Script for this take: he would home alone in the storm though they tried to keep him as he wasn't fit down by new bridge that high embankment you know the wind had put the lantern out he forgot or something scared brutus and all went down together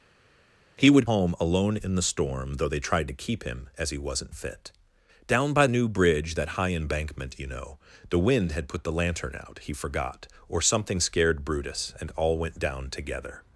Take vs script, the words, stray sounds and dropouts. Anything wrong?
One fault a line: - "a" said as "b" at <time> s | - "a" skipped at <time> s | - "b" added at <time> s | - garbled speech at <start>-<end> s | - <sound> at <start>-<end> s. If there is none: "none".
none